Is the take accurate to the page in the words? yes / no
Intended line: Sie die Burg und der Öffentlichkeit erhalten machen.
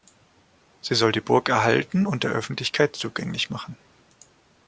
no